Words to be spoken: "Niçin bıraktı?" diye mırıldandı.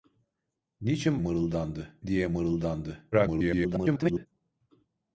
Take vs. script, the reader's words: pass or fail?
fail